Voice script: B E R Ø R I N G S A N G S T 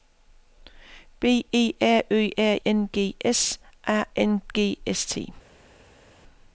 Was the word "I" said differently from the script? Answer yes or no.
yes